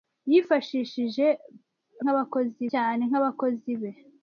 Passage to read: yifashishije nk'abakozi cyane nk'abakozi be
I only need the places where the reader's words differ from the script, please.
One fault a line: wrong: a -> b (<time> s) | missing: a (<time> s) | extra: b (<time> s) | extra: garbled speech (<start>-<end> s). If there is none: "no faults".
no faults